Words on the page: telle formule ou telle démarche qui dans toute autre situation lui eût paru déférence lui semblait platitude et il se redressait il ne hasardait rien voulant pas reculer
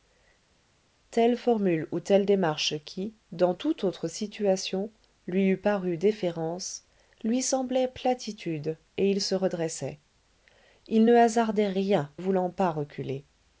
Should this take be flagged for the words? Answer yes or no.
no